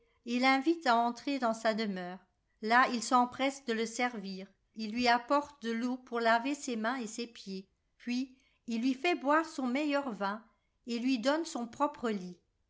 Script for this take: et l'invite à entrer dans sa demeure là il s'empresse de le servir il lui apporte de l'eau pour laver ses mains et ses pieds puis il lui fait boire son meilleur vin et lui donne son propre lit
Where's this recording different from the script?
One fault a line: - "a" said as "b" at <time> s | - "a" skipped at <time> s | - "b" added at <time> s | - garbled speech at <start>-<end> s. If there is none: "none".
none